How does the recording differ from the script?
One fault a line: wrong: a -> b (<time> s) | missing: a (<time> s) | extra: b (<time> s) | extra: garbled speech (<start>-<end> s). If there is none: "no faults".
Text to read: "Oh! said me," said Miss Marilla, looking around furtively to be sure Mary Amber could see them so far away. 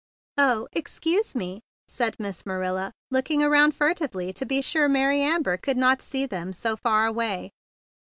wrong: said -> excuse (0.7 s)
extra: not (5.8 s)